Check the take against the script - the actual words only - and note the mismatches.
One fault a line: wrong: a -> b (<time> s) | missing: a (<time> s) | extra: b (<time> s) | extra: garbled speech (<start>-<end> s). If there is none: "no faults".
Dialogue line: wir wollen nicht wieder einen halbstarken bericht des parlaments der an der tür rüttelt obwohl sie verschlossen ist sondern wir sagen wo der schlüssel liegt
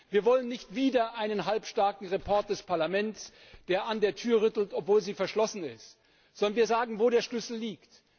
no faults